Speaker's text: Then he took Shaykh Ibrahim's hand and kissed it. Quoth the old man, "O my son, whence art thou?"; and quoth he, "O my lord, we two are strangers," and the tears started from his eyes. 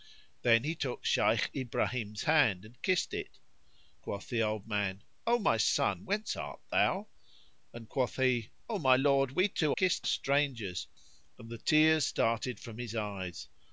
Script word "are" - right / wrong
wrong